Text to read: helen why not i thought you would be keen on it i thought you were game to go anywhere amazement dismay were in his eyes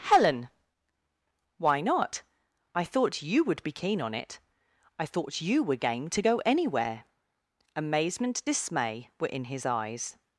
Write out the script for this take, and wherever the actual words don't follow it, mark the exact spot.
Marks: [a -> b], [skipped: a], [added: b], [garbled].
helen why not i thought you would be keen on it i thought you were game to go anywhere amazement dismay were in his eyes